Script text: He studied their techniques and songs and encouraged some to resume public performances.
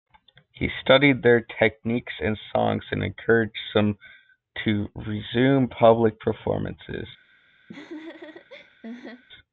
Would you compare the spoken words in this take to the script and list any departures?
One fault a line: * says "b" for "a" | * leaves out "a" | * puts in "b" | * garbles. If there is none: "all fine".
all fine